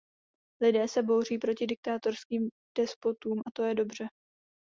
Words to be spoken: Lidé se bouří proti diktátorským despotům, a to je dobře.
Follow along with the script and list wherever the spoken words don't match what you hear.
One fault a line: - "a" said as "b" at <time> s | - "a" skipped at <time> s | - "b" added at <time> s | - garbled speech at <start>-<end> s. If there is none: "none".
none